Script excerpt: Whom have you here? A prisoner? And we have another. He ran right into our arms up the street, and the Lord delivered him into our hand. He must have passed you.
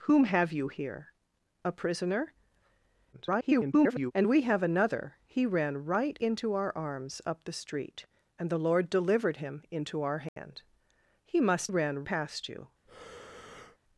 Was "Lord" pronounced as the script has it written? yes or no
yes